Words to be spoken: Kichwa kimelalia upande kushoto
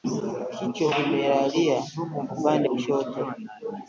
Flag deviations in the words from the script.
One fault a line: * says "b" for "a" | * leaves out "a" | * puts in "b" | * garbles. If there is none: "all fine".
all fine